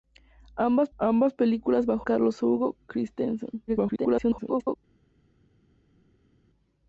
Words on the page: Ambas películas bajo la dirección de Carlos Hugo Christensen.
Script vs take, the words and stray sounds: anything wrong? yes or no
yes